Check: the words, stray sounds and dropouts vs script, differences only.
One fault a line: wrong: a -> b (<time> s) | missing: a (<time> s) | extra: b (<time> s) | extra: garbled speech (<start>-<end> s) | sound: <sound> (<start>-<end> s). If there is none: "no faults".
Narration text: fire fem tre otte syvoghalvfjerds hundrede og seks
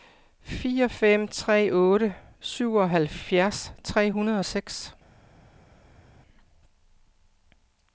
extra: tre (3.8 s)